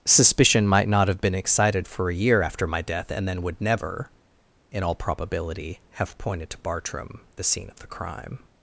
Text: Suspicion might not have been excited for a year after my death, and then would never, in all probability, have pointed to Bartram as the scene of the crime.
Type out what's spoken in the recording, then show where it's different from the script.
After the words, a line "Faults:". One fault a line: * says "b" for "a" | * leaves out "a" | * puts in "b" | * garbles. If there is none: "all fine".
Suspicion might not have been excited for a year after my death, and then would never, in all probability, have pointed to Bartram the scene of the crime.
Faults:
* leaves out "as"